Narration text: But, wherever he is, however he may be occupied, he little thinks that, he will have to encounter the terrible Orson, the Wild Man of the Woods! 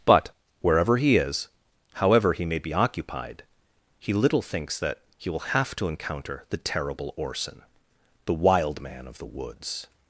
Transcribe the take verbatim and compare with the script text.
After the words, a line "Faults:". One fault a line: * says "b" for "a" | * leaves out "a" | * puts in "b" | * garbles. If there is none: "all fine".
But, wherever he is, however he may be occupied, he little thinks that, he will have to encounter the terrible Orson, the Wild Man of the Woods!
Faults:
all fine